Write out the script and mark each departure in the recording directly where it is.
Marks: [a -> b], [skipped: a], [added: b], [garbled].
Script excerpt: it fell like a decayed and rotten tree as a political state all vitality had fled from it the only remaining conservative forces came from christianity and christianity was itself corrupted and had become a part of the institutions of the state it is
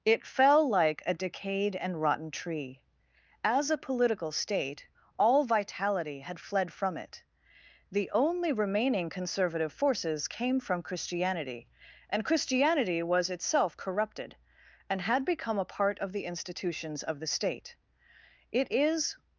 it fell like a decayed and rotten tree as a political state all vitality had fled from it the only remaining conservative forces came from christianity and christianity was itself corrupted and had become a part of the institutions of the state it is